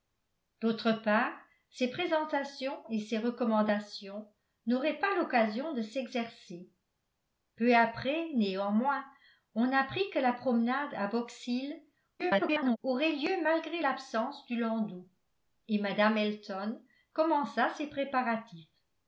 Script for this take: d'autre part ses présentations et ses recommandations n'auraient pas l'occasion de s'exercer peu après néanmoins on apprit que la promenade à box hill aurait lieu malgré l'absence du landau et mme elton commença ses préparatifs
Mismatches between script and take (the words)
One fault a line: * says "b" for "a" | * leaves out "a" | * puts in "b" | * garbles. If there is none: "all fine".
* garbles